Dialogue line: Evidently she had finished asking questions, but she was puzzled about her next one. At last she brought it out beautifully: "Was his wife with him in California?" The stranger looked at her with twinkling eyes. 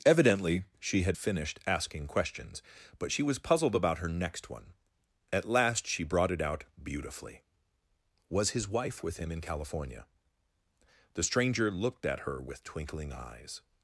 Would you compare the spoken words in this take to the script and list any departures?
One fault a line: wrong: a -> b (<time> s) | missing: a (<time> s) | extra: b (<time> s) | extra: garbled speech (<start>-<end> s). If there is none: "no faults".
no faults